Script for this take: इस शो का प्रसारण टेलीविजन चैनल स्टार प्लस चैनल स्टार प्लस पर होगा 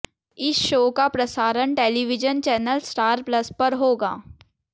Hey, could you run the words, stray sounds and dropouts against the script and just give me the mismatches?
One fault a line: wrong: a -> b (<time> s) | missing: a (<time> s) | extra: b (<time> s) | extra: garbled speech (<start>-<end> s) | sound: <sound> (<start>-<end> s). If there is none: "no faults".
missing: चैनल स्टार प्लस (3.5 s)